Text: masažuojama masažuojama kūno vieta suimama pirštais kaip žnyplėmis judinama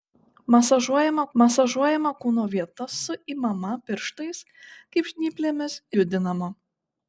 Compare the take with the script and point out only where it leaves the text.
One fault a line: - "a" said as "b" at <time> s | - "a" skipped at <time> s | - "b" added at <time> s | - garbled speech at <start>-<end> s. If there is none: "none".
none